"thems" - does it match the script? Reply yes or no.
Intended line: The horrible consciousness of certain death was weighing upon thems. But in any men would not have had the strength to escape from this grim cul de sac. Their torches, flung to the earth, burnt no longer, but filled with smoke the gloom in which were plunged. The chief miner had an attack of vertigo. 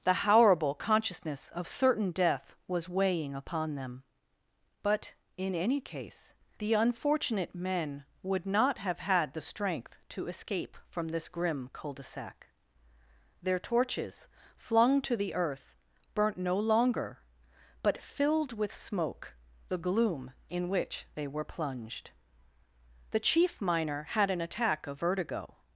no